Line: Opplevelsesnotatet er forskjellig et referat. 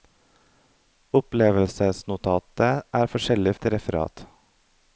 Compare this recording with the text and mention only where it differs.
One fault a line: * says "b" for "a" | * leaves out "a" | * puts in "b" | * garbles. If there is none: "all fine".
all fine